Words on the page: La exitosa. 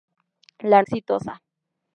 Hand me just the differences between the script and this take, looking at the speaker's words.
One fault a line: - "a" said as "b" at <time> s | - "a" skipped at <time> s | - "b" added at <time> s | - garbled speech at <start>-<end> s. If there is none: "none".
none